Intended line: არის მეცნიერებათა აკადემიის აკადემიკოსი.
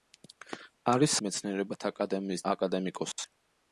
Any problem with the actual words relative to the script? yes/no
no